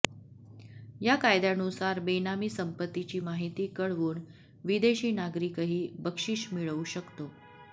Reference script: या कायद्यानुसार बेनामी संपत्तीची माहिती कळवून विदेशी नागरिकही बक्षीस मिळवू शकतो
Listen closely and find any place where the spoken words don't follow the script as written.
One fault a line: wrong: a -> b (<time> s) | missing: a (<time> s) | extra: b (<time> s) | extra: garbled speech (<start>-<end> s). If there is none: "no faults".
no faults